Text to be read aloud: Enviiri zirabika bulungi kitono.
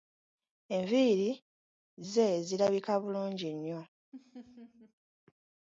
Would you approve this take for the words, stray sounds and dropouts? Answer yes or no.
no